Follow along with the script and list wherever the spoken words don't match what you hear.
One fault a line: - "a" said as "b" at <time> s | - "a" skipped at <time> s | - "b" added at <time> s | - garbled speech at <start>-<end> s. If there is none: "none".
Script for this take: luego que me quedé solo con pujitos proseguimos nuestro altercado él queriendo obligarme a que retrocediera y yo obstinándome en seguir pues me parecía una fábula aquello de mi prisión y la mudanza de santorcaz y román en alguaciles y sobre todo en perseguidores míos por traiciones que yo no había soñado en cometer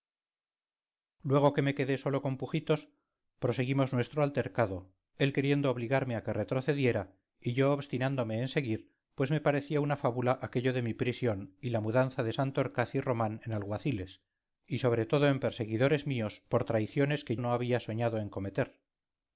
- "yo" skipped at 17.4 s